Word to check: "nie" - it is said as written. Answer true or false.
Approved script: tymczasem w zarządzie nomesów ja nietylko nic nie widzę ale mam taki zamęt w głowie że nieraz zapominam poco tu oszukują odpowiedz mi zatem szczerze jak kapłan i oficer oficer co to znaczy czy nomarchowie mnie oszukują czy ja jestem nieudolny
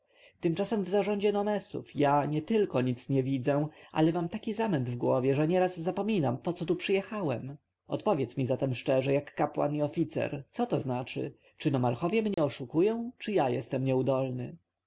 true